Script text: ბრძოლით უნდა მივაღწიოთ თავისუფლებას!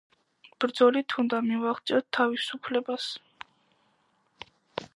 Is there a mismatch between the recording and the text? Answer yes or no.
no